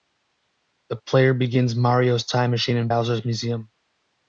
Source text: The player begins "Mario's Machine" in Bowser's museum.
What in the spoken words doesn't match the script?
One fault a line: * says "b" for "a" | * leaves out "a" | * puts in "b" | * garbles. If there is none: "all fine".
* puts in "Time"